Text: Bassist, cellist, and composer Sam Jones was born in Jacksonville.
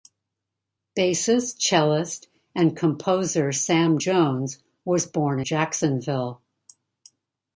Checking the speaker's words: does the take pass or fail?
fail